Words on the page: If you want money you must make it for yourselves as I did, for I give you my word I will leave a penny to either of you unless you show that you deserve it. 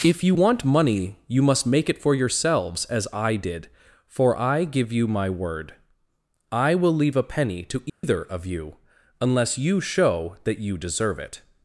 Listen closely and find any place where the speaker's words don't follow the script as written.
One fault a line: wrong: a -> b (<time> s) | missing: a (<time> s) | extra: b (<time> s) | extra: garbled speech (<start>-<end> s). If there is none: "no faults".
no faults